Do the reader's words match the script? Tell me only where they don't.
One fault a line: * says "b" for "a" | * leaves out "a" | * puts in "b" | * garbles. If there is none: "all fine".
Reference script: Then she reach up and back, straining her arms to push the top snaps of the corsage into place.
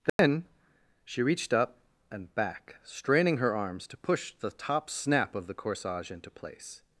* says "reached" for "reach"
* says "snap" for "snaps"